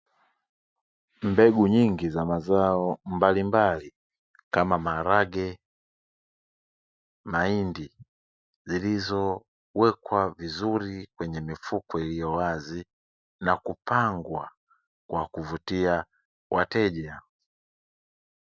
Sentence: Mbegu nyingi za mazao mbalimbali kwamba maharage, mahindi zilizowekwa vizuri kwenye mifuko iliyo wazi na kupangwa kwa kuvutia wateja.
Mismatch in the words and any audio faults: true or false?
true